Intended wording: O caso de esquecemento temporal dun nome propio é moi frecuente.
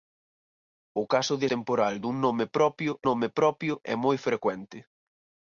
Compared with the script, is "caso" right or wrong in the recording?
right